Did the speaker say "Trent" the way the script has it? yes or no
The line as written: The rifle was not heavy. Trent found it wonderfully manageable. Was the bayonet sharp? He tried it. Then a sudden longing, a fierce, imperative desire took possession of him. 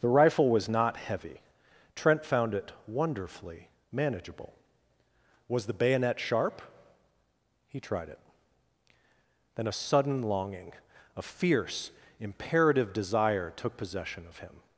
yes